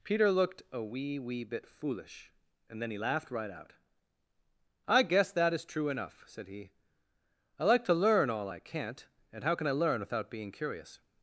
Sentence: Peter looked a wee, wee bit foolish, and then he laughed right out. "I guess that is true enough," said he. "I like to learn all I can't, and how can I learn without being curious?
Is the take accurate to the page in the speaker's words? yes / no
yes